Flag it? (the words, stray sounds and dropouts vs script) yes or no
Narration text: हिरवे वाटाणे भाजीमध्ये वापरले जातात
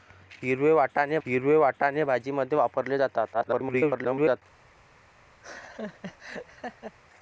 yes